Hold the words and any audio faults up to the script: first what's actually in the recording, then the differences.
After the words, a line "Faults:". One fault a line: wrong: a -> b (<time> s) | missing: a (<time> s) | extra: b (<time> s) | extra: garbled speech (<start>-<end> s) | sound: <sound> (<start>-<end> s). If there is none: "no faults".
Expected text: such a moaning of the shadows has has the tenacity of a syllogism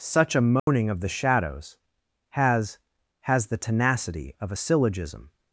such a moaning of the shadows has has the tenacity of a syllogism
Faults:
sound: dropout (0.6-0.7 s)